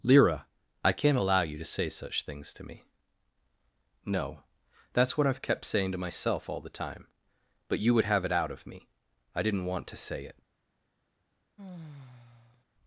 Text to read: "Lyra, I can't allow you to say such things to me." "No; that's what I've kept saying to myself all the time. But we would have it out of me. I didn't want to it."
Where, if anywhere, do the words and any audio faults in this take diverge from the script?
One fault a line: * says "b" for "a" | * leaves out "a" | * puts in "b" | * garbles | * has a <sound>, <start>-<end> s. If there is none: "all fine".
* says "you" for "we"
* puts in "say"
* has a sigh, 11.6-12.6 s